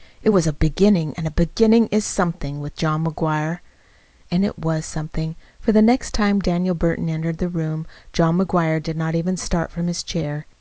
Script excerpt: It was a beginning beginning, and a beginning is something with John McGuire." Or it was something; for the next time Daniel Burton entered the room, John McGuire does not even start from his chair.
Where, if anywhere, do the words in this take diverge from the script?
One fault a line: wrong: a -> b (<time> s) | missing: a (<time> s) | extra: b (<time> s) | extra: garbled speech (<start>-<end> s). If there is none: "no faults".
missing: beginning (1.1 s)
wrong: Or -> And (4.3 s)
wrong: does -> did (8.8 s)